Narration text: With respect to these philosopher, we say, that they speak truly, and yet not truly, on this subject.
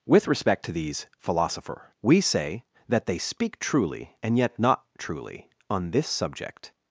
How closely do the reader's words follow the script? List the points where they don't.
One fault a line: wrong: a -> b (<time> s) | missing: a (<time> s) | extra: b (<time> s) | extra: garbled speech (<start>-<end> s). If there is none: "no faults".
no faults